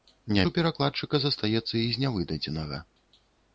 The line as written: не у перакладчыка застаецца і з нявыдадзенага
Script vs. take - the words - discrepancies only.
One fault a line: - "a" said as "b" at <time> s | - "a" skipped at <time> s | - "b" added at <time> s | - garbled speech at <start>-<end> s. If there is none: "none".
none